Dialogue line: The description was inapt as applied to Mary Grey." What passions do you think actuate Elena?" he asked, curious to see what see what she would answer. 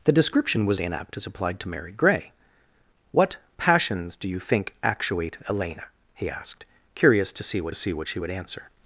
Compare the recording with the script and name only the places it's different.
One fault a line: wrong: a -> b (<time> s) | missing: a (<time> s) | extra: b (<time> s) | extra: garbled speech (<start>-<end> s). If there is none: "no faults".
no faults